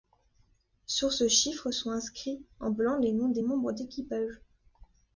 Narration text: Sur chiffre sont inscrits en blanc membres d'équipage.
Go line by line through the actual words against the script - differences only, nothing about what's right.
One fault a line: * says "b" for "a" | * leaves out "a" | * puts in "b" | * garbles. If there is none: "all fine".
* puts in "ce"
* puts in "les noms des"